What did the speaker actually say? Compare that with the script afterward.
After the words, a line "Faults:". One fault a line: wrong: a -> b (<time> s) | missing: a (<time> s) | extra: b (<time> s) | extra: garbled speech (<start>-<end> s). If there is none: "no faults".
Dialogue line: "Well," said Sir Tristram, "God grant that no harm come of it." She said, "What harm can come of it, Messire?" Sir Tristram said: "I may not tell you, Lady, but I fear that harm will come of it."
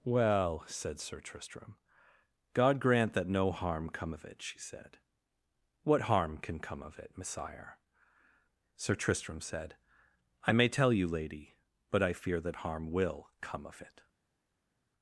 "Well," said Sir Tristram, "God grant that no harm come of it." She said, "What harm can come of it, Messire?" Sir Tristram said: "I may tell you, Lady, but I fear that harm will come of it."
Faults:
missing: not (10.7 s)